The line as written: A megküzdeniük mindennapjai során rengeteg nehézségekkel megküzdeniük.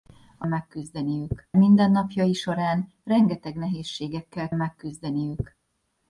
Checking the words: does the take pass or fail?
pass